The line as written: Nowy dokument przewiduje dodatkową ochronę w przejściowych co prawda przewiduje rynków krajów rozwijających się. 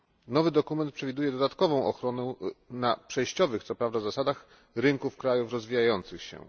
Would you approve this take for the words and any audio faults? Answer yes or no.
no